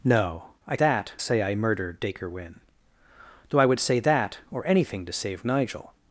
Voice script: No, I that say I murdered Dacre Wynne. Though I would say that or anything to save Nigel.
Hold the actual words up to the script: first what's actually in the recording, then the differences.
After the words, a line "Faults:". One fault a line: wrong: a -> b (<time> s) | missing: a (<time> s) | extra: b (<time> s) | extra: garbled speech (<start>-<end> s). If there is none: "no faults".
No, I that say I murdered Dacre Wynne. Though I would say that or anything to save Nigel.
Faults:
no faults